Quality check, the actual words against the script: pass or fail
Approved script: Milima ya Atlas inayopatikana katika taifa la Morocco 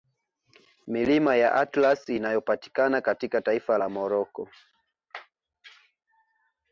pass